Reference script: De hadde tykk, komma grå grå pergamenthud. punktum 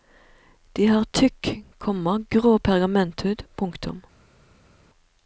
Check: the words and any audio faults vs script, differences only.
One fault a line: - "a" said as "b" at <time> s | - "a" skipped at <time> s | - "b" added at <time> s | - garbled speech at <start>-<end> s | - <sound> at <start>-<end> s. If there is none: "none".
- "hadde" said as "har" at 0.9 s
- "grå" skipped at 2.6 s